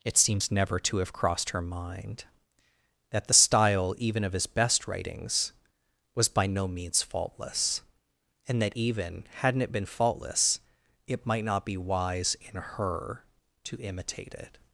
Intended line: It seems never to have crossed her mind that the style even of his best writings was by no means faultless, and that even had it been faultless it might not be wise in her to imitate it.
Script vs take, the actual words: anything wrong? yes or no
yes